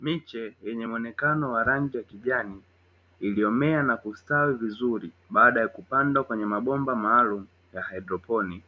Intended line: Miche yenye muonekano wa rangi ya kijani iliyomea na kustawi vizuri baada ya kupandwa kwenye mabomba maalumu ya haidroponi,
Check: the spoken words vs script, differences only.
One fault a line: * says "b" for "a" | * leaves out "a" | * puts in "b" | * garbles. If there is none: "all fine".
all fine